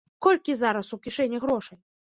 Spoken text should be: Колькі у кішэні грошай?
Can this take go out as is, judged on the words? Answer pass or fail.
fail